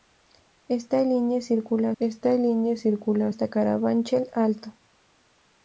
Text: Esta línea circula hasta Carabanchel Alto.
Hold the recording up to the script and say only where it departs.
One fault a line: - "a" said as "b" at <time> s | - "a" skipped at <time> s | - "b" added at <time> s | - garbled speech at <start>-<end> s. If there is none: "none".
- "esta línea circula" added at 2.0 s